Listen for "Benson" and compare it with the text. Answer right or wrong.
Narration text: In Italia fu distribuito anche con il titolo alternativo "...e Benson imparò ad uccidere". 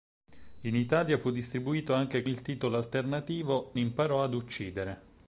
wrong